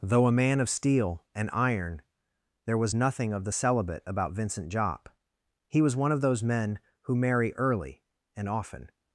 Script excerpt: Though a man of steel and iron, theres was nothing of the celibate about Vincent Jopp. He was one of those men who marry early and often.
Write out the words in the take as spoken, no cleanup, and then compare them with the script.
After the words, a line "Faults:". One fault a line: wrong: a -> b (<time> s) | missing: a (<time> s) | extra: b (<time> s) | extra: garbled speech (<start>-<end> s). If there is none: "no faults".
Though a man of steel and iron, there was nothing of the celibate about Vincent Jopp. He was one of those men who marry early and often.
Faults:
wrong: theres -> there (2.7 s)